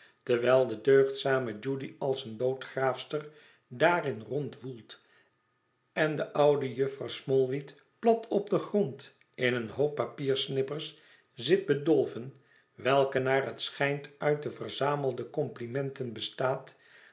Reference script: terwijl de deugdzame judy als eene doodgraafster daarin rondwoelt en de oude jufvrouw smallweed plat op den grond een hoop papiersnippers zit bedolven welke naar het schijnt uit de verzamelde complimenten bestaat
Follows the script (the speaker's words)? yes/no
no